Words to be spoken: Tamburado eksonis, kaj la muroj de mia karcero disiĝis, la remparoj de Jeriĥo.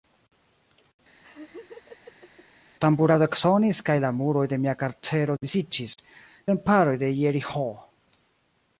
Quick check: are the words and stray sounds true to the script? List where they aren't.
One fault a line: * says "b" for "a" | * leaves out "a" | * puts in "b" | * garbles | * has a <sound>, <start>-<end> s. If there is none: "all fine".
* has a laugh, 1.2-2.5 s